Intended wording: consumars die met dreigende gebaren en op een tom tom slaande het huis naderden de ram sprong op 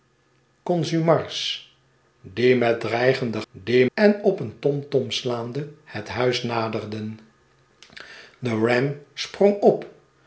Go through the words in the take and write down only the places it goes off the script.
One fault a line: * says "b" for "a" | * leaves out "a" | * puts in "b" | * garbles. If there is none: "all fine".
* says "die" for "gebaren"